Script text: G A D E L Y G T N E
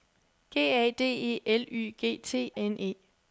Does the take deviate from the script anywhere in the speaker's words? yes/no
no